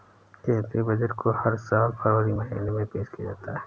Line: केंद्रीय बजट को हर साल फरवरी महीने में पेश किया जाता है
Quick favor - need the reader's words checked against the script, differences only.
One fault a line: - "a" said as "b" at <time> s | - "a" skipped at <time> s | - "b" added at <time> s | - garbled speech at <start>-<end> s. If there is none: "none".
none